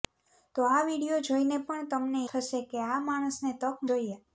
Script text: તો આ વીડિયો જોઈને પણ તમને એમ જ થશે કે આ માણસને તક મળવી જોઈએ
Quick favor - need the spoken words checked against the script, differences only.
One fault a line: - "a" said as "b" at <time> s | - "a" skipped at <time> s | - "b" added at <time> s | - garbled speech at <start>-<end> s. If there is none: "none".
- "એમ જ" skipped at 2.2 s
- "મળવી" skipped at 3.9 s